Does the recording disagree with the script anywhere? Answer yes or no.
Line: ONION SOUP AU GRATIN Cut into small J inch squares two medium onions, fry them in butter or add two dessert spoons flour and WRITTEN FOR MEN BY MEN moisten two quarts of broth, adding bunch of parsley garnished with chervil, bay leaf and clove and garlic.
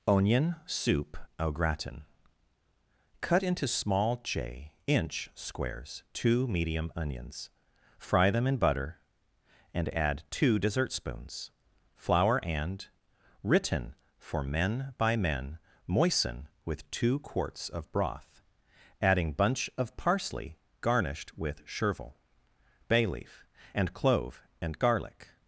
yes